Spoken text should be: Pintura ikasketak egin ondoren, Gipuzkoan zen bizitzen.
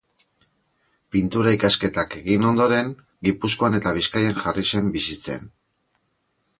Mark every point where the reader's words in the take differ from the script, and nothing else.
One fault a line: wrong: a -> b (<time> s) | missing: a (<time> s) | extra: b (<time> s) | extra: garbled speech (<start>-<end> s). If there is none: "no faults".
extra: eta Bizkaian jarri (3.8 s)